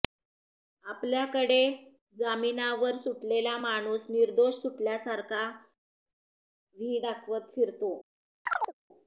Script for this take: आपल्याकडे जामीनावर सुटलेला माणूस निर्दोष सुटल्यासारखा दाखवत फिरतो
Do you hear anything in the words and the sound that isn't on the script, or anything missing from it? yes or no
yes